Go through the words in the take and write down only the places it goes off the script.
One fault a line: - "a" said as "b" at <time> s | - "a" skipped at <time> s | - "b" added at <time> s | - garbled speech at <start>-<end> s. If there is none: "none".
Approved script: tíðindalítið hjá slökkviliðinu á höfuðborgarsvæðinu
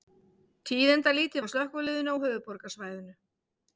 none